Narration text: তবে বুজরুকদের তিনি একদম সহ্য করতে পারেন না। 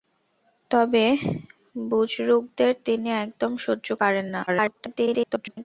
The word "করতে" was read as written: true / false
false